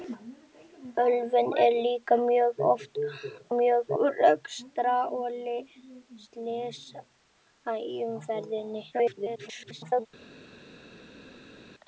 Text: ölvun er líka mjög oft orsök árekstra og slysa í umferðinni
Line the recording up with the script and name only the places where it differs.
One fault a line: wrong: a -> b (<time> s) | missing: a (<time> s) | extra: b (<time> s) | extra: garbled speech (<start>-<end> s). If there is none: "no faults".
wrong: orsök -> mjög (3.6 s)
extra: garbled speech (8.9-10.1 s)